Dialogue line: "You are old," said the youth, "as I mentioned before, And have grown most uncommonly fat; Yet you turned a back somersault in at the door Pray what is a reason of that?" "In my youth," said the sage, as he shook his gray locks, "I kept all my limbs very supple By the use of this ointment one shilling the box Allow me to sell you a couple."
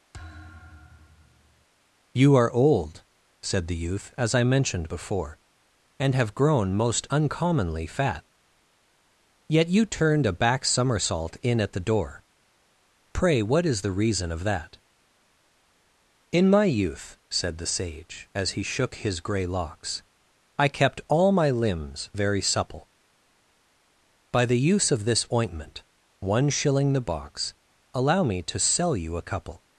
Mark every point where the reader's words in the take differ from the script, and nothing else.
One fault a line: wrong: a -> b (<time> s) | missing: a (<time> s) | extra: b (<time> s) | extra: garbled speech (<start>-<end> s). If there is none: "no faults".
wrong: a -> the (13.8 s)